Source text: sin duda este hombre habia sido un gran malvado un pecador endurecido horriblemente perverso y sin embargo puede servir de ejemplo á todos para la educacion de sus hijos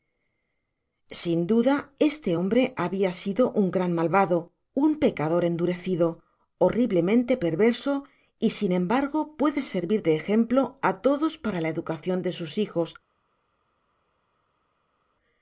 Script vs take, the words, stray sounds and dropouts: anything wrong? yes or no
no